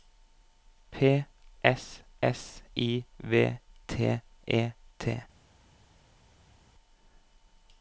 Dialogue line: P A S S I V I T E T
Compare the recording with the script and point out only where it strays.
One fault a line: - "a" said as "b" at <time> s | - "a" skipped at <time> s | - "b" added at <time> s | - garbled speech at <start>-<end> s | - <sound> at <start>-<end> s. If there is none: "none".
- "A" skipped at 1.2 s
- "I" skipped at 3.6 s